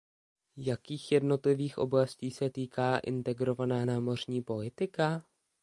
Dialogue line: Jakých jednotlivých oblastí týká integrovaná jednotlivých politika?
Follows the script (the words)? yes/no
no